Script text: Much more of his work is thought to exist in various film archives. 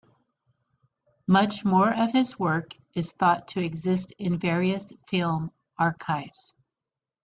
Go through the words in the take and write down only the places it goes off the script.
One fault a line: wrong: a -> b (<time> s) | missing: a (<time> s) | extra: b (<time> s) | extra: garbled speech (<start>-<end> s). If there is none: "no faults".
no faults